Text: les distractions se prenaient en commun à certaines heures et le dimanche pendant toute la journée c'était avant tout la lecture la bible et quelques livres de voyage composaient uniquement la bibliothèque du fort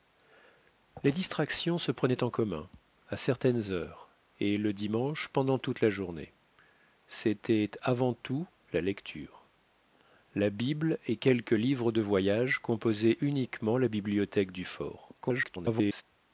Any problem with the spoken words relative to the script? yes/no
yes